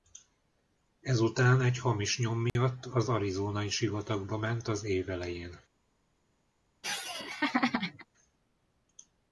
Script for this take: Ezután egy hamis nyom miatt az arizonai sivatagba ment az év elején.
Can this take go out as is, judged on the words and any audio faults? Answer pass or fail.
fail